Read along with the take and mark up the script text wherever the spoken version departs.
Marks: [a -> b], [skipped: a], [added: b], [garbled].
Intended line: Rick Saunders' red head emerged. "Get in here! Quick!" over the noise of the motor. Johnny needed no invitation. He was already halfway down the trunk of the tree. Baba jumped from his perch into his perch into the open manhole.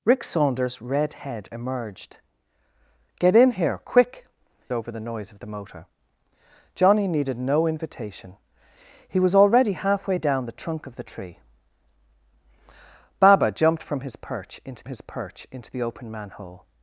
Rick Saunders' red head emerged. "Get in here! Quick!" over the noise of the motor. Johnny needed no invitation. He was already halfway down the trunk of the tree. Baba jumped from his perch into his perch into the open manhole.